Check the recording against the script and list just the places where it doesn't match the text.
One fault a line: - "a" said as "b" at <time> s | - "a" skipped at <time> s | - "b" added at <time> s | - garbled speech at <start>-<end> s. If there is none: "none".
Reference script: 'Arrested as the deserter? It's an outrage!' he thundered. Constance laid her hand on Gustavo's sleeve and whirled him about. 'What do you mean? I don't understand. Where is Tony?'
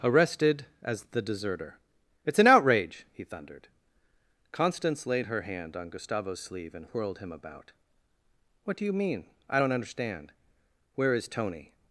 none